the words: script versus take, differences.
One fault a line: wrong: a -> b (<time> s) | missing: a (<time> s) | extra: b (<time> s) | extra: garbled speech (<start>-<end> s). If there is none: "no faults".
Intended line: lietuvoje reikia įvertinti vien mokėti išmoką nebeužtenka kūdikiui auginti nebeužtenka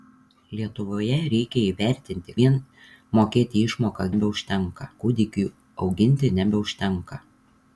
no faults